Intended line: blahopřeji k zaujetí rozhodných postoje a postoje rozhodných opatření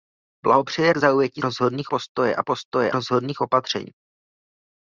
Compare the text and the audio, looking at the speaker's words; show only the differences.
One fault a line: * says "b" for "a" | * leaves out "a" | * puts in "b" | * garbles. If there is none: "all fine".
all fine